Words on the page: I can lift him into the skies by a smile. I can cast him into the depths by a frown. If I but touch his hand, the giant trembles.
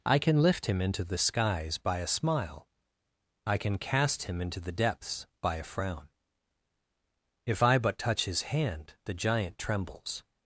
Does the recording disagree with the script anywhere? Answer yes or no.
no